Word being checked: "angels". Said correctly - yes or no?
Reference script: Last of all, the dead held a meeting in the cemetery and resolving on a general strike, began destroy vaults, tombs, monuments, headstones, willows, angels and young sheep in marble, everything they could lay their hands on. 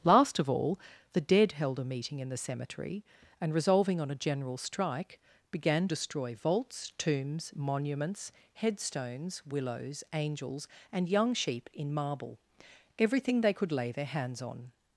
yes